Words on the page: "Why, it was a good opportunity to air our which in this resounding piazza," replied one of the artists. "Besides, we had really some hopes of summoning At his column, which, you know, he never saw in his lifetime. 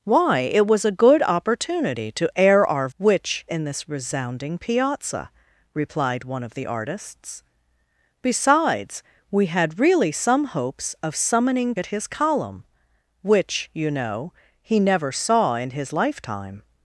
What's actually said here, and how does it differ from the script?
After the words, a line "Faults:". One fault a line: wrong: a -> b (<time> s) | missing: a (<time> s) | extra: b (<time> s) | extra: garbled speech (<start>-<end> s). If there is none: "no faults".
"Why, it was a good opportunity to air our which in this resounding piazza," replied one of the artists. "Besides, we had really some hopes of summoning At his column, which, you know, he never saw in his lifetime.
Faults:
no faults